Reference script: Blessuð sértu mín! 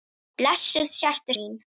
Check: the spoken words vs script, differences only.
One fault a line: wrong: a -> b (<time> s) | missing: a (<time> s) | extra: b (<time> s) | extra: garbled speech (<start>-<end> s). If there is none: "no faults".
no faults